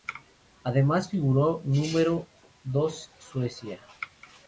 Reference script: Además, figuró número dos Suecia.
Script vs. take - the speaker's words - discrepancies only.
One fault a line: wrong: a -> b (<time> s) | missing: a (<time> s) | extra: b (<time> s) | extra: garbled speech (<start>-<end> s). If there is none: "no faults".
no faults